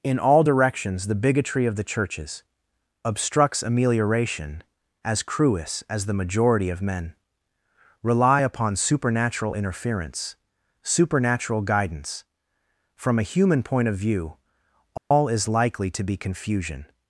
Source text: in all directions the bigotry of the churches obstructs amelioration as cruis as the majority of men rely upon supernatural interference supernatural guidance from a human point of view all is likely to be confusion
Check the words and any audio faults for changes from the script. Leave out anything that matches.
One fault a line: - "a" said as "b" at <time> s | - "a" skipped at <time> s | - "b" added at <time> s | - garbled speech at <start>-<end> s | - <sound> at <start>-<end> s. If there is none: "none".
- dropout at 15.0-15.1 s